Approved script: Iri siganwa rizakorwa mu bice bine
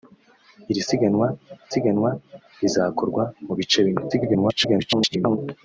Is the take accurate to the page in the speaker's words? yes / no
no